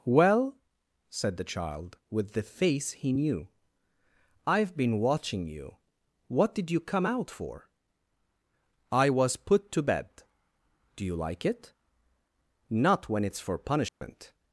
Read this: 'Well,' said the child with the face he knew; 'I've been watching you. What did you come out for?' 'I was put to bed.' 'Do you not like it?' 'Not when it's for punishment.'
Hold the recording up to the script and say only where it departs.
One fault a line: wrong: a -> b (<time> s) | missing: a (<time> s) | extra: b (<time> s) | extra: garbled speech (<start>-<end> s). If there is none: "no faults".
missing: not (11.1 s)